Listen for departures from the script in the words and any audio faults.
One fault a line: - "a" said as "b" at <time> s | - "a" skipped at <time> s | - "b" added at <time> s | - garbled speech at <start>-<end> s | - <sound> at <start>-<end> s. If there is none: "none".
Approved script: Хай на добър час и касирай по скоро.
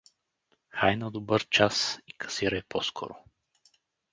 none